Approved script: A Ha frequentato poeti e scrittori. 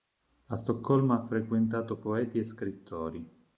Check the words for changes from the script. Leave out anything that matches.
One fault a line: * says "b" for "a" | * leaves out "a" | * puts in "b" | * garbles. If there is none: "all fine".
* puts in "Stoccolma"